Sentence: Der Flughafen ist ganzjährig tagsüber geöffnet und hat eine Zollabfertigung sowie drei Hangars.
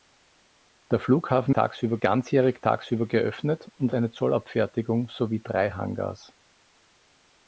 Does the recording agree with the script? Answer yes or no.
no